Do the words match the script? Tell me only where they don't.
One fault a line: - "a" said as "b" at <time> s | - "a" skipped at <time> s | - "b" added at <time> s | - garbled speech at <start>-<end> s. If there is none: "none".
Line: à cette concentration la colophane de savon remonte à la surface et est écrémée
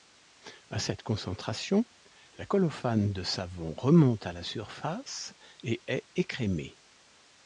none